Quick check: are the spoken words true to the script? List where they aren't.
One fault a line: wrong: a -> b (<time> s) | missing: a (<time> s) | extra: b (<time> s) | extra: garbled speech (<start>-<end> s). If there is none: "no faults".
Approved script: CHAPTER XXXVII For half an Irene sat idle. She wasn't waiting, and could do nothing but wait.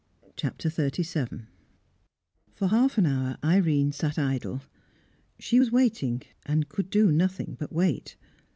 extra: hour (3.0 s)
wrong: wasn't -> was (5.6 s)